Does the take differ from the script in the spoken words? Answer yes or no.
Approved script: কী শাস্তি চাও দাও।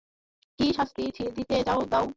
yes